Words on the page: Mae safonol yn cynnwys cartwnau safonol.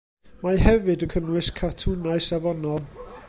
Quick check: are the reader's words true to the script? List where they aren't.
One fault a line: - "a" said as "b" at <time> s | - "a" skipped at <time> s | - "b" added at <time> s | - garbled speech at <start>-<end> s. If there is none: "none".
- "safonol" said as "hefyd" at 0.7 s